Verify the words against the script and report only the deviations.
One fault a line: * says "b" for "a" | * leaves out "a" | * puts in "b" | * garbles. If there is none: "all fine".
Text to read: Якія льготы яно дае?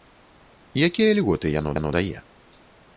* puts in "яно"